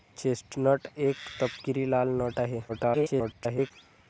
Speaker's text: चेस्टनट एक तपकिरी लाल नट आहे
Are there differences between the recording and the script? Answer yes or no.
yes